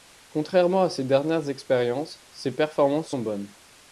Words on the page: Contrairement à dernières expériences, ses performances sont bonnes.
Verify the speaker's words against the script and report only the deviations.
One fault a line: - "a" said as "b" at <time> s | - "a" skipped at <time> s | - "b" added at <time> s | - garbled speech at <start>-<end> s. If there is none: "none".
- "ses" added at 0.9 s